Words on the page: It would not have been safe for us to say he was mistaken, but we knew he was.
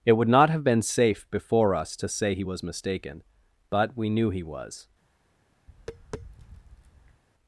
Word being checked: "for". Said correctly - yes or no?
no